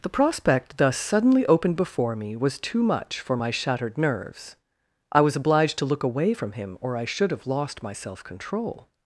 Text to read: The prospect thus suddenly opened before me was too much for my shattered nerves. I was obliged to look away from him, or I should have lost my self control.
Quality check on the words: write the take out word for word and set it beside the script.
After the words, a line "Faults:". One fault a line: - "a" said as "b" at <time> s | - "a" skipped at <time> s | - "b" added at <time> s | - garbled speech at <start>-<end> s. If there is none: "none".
The prospect thus suddenly opened before me was too much for my shattered nerves. I was obliged to look away from him, or I should have lost my self control.
Faults:
none